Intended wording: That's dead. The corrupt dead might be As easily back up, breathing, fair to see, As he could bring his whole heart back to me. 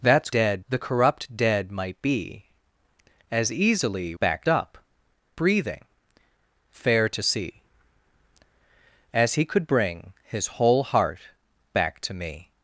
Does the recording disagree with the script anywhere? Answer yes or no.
no